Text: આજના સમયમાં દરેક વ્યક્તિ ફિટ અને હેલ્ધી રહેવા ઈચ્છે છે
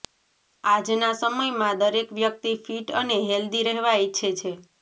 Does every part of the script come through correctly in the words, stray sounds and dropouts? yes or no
yes